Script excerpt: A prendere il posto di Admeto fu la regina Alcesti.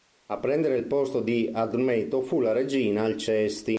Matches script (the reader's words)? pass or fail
pass